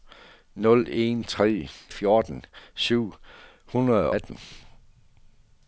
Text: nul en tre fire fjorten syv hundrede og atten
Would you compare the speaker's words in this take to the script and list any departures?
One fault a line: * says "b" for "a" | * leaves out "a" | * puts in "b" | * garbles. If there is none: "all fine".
* leaves out "fire"
* leaves out "og"